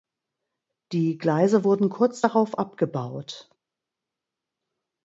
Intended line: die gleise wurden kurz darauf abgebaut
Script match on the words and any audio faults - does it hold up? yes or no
yes